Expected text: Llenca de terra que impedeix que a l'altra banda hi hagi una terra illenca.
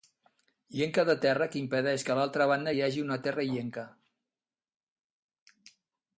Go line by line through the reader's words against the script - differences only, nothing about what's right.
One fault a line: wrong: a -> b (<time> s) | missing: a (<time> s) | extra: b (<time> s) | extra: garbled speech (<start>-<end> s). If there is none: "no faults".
no faults